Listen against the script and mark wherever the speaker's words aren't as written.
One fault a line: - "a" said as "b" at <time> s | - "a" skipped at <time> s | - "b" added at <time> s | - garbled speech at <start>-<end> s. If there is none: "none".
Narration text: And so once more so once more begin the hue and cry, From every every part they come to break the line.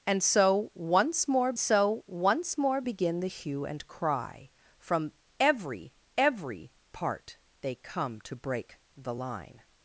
none